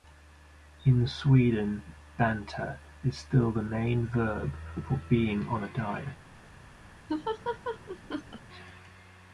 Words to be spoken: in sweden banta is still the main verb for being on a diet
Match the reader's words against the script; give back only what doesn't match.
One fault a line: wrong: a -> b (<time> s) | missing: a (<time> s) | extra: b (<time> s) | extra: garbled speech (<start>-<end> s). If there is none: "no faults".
no faults